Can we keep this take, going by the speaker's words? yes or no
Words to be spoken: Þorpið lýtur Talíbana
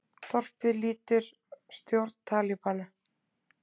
no